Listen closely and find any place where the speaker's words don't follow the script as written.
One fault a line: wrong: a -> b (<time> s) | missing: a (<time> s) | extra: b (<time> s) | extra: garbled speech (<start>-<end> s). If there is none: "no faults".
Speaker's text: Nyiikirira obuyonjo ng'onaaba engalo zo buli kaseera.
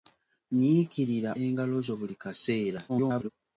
missing: obuyonjo ng'onaaba (1.3 s)
extra: garbled speech (2.9-3.3 s)